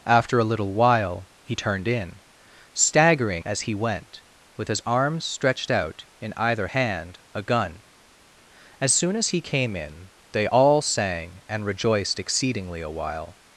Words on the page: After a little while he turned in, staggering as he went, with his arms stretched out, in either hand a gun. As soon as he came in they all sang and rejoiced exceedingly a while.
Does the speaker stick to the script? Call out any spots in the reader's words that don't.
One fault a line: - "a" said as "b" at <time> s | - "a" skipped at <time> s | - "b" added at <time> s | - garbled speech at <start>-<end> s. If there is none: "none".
none